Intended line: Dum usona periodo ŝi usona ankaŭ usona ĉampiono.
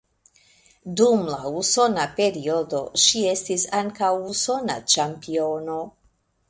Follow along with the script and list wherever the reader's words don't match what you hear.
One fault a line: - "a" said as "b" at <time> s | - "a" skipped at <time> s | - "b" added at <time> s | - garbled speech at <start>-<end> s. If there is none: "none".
- "la" added at 1.3 s
- "usona" said as "estis" at 3.4 s